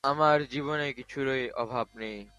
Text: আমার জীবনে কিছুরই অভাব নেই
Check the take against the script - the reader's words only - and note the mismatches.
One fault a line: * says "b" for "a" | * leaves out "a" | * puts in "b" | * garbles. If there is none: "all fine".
all fine